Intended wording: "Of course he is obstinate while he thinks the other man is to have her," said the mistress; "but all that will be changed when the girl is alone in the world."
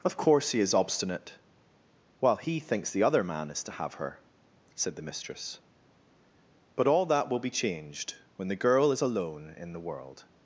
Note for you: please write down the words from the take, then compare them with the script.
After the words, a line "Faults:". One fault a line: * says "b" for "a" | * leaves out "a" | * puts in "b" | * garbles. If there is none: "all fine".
"Of course he is obstinate while he thinks the other man is to have her," said the mistress; "but all that will be changed when the girl is alone in the world."
Faults:
all fine